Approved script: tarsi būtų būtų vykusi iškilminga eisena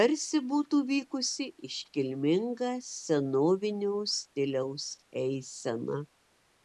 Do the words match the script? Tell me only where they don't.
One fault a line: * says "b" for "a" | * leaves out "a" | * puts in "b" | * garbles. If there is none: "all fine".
* leaves out "būtų"
* puts in "senovinio stiliaus"